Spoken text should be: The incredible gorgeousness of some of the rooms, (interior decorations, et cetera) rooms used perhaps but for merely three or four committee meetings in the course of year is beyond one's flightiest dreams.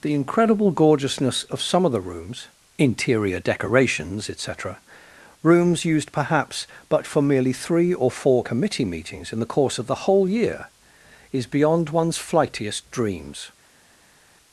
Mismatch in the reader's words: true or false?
true